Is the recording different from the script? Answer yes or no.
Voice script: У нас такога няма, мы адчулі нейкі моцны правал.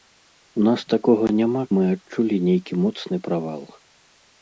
no